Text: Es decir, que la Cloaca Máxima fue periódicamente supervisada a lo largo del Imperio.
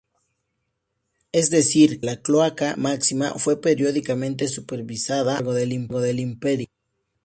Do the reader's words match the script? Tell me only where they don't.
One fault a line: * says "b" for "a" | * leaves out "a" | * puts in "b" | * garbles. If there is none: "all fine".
* leaves out "que"